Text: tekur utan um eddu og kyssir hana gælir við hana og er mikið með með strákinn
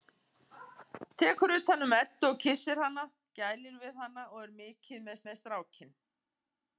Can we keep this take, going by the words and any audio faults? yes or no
yes